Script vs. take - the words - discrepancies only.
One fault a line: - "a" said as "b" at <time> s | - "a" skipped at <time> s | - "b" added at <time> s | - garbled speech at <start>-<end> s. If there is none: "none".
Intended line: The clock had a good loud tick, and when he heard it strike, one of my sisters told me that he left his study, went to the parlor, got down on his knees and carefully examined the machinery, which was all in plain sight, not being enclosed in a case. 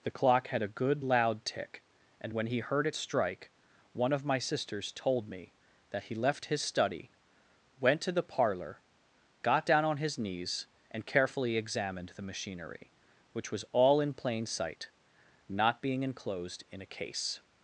none